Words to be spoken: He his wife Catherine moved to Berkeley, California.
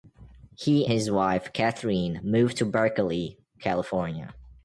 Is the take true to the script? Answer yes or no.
yes